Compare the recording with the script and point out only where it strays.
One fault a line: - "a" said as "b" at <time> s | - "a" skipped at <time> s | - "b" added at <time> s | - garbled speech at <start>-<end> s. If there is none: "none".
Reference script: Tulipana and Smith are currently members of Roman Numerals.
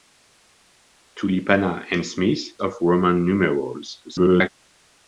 - "are currently members" skipped at 2.4 s
- garbled speech at 4.0-4.5 s